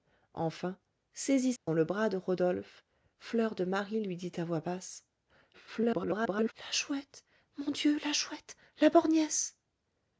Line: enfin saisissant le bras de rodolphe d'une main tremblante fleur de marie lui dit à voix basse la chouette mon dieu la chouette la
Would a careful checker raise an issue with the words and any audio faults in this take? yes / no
yes